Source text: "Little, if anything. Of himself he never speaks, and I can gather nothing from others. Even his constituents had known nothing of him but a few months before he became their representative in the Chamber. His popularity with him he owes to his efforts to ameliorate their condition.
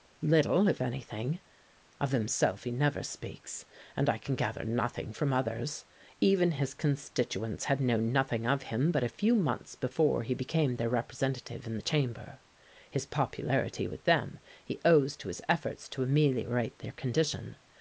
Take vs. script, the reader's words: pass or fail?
fail